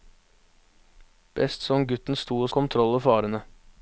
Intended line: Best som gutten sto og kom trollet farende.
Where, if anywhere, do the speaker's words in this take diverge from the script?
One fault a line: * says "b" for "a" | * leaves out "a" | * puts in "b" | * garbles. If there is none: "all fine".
all fine